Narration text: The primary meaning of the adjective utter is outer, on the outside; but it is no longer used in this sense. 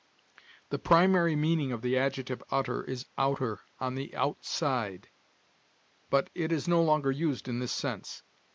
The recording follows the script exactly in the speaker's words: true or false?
true